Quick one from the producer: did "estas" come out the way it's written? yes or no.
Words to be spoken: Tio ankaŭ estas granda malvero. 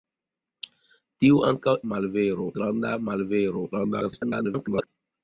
no